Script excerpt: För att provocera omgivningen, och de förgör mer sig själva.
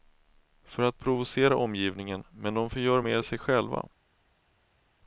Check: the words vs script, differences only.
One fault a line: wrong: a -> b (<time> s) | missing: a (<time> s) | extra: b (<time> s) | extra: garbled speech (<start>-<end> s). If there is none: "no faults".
wrong: och -> men (2.3 s)